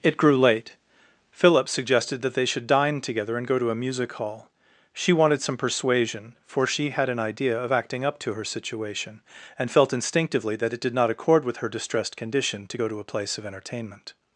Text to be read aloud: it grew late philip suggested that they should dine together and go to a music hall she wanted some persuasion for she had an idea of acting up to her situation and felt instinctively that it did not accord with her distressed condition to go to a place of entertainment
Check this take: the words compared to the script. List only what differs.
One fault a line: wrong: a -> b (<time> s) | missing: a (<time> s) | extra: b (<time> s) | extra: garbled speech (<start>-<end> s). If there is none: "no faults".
no faults